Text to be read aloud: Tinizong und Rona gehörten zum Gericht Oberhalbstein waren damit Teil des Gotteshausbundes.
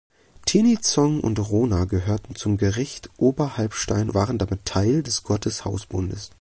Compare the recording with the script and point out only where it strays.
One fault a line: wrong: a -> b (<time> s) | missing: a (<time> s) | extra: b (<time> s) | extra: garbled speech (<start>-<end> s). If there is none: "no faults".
no faults